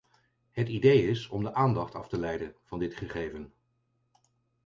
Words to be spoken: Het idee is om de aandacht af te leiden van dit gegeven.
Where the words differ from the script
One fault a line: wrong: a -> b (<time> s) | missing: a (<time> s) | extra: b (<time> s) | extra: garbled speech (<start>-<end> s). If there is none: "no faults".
no faults